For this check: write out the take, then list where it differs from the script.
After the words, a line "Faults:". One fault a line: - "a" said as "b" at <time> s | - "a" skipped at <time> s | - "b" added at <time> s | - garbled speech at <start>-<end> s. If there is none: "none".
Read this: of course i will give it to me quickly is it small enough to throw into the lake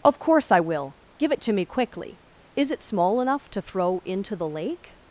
of course i will give it to me quickly is it small enough to throw into the lake
Faults:
none